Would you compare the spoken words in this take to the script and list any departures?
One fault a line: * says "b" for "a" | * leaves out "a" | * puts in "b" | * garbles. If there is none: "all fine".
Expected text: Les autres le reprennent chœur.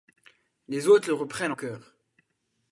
all fine